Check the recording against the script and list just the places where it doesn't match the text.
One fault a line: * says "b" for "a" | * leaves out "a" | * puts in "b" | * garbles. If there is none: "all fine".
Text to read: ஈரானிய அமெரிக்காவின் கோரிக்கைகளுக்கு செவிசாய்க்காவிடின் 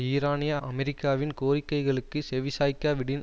all fine